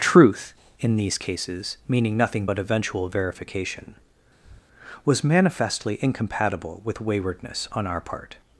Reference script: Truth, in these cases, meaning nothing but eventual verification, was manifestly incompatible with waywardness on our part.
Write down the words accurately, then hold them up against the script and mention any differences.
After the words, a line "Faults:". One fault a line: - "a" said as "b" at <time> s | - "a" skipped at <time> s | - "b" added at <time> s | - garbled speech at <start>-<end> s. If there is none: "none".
Truth, in these cases, meaning nothing but eventual verification, was manifestly incompatible with waywardness on our part.
Faults:
none